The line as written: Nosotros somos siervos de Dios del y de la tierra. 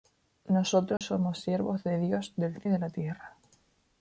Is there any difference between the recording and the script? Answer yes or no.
no